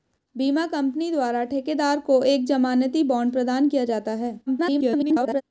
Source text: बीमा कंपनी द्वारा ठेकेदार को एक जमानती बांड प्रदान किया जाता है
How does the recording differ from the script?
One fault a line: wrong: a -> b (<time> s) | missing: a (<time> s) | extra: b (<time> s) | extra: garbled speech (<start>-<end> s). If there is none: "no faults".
extra: garbled speech (4.5-5.4 s)